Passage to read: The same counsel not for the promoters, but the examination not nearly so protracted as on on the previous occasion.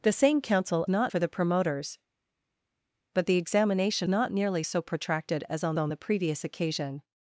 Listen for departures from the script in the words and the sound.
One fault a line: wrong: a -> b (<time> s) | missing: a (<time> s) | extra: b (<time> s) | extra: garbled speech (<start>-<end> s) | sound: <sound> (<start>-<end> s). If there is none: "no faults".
no faults